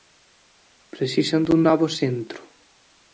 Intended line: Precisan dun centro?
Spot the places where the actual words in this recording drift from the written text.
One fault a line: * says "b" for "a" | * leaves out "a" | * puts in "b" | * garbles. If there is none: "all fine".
* puts in "novo"